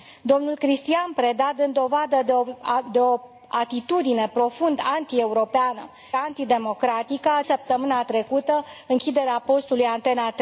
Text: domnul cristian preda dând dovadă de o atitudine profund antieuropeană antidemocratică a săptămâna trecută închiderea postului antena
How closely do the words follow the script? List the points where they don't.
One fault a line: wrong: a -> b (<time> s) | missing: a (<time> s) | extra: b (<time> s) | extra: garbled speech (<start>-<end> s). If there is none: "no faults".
no faults